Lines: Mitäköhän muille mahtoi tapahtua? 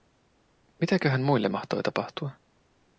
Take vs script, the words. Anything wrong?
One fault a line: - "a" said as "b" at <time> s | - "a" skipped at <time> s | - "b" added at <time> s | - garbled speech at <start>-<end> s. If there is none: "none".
none